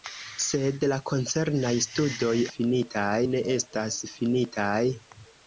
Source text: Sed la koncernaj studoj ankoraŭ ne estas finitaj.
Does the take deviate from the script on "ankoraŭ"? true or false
true